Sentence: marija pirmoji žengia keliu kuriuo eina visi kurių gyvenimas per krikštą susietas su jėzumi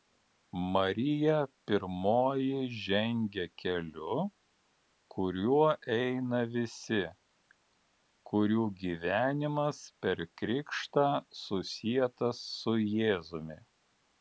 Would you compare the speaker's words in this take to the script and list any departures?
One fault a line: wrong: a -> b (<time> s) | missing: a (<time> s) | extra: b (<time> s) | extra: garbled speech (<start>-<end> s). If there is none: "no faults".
no faults